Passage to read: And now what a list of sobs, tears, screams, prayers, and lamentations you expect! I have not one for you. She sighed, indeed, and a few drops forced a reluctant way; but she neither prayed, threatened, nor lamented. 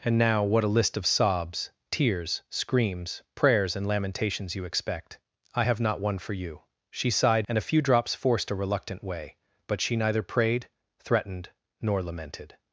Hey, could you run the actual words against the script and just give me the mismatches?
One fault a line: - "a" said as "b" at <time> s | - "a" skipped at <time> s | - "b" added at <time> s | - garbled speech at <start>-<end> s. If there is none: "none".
- "indeed" skipped at 7.5 s